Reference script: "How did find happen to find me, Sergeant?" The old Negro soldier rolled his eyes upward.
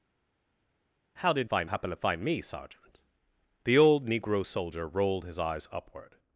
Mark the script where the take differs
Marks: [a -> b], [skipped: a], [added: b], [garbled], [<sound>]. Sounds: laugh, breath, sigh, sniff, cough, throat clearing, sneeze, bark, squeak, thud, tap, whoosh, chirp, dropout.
"How did find happen to find me, Sergeant?" The old Negro soldier rolled his eyes upward.